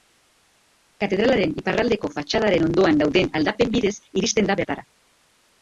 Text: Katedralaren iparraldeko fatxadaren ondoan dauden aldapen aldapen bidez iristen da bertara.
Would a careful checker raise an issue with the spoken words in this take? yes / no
yes